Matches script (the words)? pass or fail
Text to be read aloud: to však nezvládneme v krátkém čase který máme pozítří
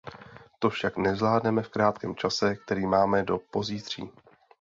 fail